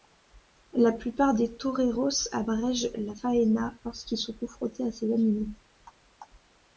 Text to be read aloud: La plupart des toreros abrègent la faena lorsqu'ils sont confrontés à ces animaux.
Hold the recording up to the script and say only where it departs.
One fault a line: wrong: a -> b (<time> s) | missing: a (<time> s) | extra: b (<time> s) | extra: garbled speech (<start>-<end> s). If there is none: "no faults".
no faults